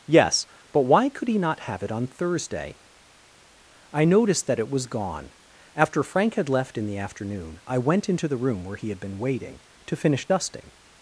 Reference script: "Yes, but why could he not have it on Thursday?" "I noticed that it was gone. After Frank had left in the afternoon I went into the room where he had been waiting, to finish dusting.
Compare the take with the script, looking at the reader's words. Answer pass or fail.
pass